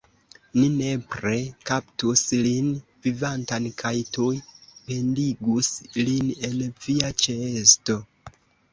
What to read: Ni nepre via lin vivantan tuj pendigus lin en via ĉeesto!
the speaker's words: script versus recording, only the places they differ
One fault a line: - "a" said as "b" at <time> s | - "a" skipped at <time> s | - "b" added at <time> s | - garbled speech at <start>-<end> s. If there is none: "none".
- "via" said as "kaptus" at 1.7 s
- "kaj" added at 3.8 s